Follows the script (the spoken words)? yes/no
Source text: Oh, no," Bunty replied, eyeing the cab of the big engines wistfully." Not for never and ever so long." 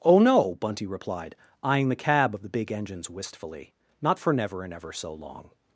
yes